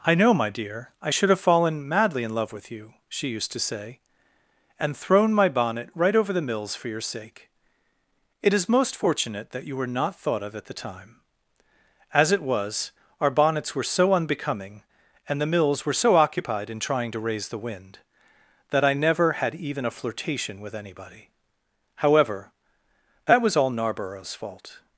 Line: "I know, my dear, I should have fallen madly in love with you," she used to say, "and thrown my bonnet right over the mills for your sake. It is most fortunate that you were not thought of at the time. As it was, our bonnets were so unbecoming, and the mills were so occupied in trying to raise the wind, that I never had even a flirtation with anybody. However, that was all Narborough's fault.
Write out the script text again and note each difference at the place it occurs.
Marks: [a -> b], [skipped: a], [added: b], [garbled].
"I know, my dear, I should have fallen madly in love with you," she used to say, "and thrown my bonnet right over the mills for your sake. It is most fortunate that you were not thought of at the time. As it was, our bonnets were so unbecoming, and the mills were so occupied in trying to raise the wind, that I never had even a flirtation with anybody. However, that was all Narborough's fault.